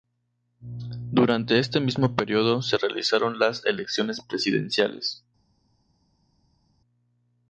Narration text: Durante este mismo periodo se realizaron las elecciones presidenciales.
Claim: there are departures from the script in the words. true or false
false